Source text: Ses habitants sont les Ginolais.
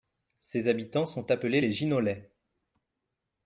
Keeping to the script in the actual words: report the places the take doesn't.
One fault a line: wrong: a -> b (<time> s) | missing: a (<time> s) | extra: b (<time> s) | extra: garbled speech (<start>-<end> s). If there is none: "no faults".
extra: appelés (1.3 s)